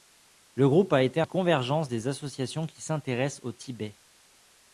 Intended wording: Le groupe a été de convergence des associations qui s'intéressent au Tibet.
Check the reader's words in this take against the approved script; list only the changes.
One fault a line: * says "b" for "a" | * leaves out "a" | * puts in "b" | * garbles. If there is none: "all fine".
all fine